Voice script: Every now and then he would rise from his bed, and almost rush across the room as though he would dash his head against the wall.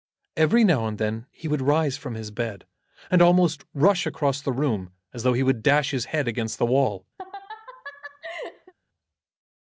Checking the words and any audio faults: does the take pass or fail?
fail